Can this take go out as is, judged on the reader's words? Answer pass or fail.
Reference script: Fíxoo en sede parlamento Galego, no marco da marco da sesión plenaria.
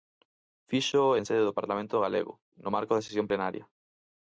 fail